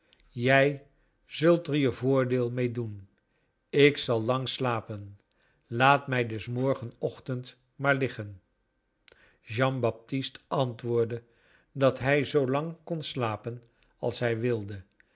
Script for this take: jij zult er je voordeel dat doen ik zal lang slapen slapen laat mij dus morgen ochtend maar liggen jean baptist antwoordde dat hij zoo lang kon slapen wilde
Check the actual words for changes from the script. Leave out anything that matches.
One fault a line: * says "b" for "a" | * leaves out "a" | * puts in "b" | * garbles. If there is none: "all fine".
* says "mee" for "dat"
* leaves out "slapen"
* puts in "als hij"